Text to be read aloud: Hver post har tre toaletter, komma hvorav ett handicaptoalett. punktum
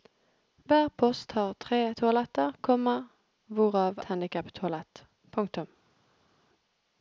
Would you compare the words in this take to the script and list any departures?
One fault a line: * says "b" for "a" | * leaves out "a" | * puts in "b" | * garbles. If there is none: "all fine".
* leaves out "ett"